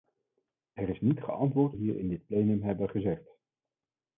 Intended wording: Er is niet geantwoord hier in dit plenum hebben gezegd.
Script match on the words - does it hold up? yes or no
yes